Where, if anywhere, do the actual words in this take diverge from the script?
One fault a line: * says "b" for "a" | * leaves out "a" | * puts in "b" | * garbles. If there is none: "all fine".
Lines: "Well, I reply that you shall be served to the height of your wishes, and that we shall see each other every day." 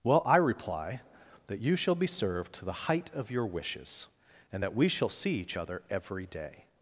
all fine